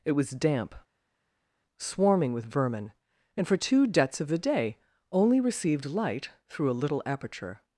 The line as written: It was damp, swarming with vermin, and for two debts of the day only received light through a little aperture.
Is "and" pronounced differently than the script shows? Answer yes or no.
no